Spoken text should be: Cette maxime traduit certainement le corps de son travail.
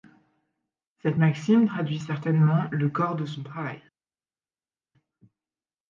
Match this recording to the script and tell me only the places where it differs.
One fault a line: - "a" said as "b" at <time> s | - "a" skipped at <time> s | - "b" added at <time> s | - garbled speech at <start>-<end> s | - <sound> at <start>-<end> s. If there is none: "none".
none